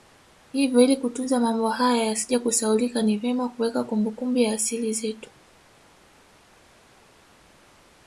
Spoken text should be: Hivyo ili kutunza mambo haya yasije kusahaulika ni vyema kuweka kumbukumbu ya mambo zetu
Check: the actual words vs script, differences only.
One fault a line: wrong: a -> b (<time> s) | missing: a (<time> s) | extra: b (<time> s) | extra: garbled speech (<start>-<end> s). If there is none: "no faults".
wrong: mambo -> asili (4.5 s)